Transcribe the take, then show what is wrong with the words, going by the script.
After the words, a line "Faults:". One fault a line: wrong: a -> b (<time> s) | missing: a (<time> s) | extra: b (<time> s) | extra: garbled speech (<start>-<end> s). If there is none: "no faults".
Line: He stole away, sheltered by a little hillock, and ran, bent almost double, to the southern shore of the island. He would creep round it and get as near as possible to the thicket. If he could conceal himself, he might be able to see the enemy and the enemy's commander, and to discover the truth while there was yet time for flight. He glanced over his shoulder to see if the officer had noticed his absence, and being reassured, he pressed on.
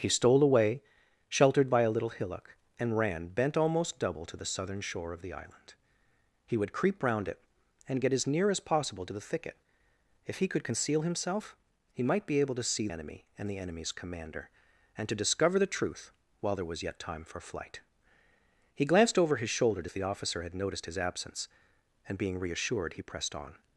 He stole away, sheltered by a little hillock, and ran, bent almost double, to the southern shore of the island. He would creep round it and get as near as possible to the thicket. If he could conceal himself, he might be able to see enemy and the enemy's commander, and to discover the truth while there was yet time for flight. He glanced over his shoulder to if the officer had noticed his absence, and being reassured, he pressed on.
Faults:
missing: the (12.9 s)
missing: see (19.9 s)